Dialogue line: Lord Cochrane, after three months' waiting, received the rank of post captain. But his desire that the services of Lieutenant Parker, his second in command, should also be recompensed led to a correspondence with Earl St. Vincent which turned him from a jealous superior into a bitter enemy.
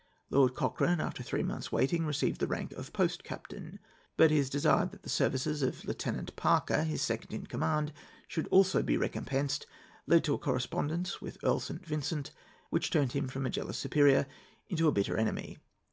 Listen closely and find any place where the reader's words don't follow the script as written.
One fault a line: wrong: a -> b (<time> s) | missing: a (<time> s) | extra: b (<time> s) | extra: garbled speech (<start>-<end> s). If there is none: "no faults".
no faults